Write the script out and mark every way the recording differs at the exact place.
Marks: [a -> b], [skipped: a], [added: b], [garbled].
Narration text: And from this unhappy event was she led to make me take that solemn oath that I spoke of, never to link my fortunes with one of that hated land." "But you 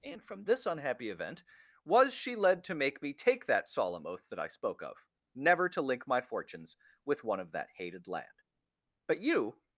And from this unhappy event was she led to make me take that solemn oath that I spoke of, never to link my fortunes with one of that hated land." "But you